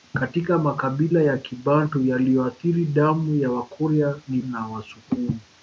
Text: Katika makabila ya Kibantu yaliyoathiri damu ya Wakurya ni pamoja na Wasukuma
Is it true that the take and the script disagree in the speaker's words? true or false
true